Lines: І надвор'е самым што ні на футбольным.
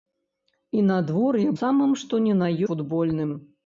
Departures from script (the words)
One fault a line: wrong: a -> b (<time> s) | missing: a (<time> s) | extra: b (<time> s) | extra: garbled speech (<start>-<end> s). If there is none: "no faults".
no faults